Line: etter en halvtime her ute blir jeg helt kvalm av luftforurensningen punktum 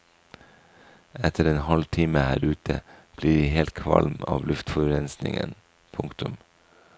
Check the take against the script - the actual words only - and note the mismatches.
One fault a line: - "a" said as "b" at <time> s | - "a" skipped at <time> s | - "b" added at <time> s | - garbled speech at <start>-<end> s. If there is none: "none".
none